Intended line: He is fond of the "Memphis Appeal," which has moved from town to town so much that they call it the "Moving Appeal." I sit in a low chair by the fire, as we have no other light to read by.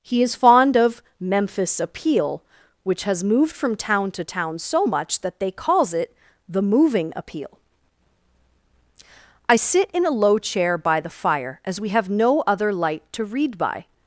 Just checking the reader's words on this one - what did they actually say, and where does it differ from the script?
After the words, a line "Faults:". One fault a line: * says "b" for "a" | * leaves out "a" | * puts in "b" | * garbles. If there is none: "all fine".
He is fond of "Memphis Appeal," which has moved from town to town so much that they calls it the "Moving Appeal." I sit in a low chair by the fire, as we have no other light to read by.
Faults:
* leaves out "the"
* says "calls" for "call"